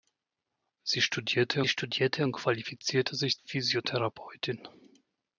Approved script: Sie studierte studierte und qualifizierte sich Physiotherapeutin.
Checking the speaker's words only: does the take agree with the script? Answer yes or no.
yes